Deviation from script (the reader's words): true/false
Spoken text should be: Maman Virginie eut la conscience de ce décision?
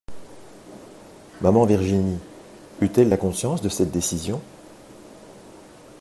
true